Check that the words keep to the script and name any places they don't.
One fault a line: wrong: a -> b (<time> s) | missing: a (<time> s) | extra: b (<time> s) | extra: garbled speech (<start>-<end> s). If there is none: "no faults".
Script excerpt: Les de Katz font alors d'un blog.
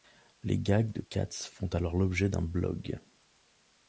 extra: gags (0.6 s)
extra: l'objet (2.0 s)